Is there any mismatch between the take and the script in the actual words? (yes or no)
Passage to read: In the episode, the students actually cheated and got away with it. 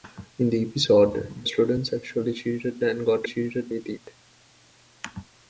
yes